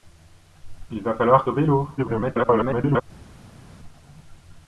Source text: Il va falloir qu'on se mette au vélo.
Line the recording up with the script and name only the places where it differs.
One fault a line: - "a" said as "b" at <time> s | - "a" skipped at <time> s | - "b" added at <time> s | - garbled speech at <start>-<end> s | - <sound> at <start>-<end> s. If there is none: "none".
- "qu'on se mette" skipped at 1.4 s
- garbled speech at 2.0-3.0 s